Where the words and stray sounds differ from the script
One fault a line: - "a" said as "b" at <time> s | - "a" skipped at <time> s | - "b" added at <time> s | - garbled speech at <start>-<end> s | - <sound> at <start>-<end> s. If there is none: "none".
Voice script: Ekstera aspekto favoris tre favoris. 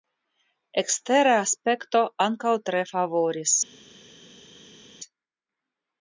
- "favoris" said as "ankaŭ" at 2.3 s